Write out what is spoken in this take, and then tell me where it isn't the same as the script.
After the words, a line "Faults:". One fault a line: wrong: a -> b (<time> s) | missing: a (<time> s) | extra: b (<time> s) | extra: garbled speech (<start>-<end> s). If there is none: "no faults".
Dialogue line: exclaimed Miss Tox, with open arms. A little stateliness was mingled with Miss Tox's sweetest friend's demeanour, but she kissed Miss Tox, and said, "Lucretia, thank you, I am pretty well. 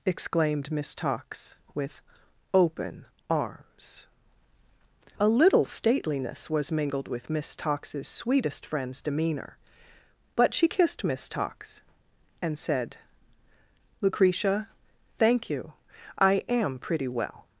exclaimed Miss Tox, with open arms. A little stateliness was mingled with Miss Tox's sweetest friend's demeanour, but she kissed Miss Tox, and said, "Lucretia, thank you, I am pretty well.
Faults:
no faults